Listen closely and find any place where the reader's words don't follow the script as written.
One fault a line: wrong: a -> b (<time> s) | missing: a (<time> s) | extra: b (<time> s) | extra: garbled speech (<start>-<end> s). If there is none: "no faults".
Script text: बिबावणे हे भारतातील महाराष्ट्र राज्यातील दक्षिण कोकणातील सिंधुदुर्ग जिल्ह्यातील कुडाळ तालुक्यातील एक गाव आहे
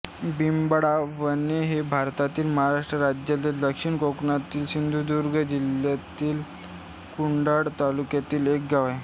no faults